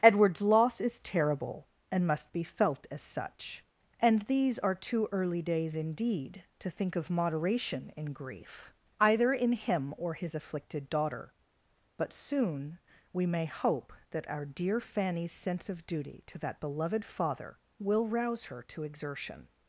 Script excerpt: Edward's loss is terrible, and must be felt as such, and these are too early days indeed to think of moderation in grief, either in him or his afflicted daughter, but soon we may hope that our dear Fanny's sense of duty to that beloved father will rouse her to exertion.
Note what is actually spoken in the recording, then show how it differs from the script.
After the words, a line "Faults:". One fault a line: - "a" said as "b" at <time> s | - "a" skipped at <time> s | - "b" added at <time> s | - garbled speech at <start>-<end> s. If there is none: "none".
Edward's loss is terrible, and must be felt as such, and these are too early days indeed to think of moderation in grief, either in him or his afflicted daughter, but soon we may hope that our dear Fanny's sense of duty to that beloved father will rouse her to exertion.
Faults:
none